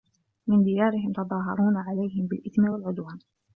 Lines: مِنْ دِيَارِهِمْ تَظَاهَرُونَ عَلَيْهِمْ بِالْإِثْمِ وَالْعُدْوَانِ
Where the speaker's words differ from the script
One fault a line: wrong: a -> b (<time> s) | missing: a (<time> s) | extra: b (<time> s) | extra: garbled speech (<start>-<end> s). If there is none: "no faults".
no faults